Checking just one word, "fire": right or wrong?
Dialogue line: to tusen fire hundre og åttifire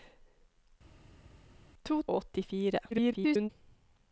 wrong